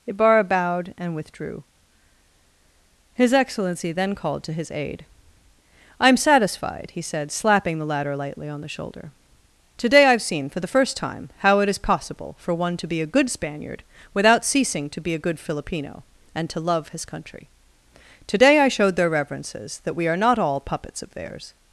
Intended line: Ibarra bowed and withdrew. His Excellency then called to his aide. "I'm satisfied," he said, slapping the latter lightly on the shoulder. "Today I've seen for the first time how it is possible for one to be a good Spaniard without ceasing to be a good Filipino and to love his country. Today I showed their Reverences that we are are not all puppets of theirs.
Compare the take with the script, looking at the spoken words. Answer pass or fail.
fail